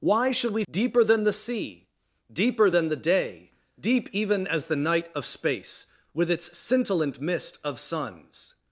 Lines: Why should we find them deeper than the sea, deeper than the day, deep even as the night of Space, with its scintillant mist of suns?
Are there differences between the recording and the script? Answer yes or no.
yes